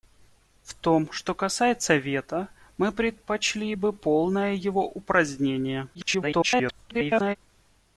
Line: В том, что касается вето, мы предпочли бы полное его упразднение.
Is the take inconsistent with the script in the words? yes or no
yes